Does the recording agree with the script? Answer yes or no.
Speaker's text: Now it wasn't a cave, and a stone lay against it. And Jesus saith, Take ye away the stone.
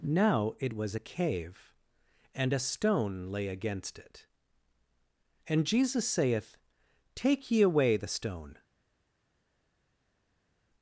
no